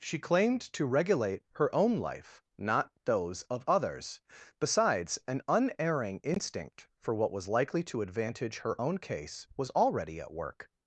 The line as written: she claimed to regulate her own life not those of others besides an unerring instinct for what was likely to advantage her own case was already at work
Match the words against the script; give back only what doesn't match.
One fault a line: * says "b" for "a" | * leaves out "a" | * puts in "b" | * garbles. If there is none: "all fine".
all fine